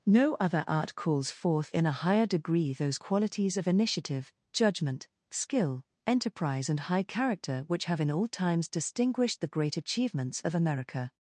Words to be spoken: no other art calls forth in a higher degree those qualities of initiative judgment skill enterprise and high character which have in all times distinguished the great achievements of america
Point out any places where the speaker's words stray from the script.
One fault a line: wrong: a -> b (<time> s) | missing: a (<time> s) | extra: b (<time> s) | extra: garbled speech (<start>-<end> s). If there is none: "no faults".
no faults